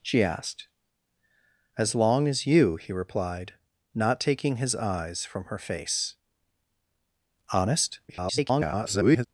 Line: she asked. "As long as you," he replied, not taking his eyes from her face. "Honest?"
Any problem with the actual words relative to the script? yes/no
yes